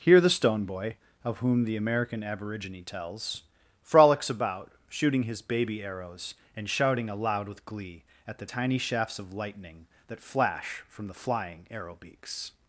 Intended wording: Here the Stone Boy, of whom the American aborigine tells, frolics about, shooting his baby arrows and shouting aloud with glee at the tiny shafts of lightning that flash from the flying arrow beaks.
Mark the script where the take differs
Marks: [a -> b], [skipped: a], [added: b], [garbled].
Here the Stone Boy, of whom the American aborigine tells, frolics about, shooting his baby arrows and shouting aloud with glee at the tiny shafts of lightning that flash from the flying arrow beaks.